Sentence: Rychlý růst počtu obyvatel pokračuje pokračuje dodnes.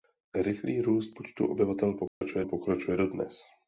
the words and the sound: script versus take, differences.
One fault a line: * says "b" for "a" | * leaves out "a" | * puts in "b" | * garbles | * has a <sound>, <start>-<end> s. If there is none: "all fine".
* has a dropout, 2.1-2.2 s